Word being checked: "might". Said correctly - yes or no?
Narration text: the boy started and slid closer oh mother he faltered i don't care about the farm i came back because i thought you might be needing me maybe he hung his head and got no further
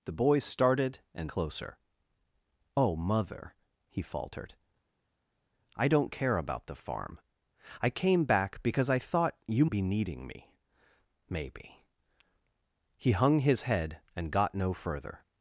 no